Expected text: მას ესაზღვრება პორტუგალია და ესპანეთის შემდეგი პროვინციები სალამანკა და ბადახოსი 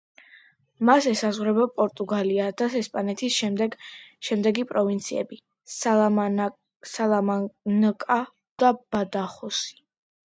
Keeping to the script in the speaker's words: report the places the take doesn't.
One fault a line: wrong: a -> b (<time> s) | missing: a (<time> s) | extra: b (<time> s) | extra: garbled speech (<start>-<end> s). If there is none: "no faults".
no faults